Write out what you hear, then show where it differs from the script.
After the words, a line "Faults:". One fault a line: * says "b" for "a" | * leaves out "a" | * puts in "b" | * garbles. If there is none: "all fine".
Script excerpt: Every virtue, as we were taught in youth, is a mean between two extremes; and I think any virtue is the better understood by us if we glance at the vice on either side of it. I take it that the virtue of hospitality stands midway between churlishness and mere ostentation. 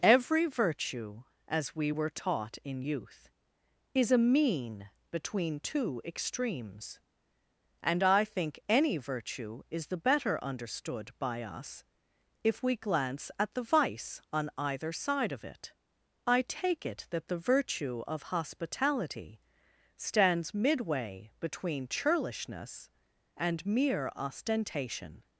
Every virtue, as we were taught in youth, is a mean between two extremes; and I think any virtue is the better understood by us if we glance at the vice on either side of it. I take it that the virtue of hospitality stands midway between churlishness and mere ostentation.
Faults:
all fine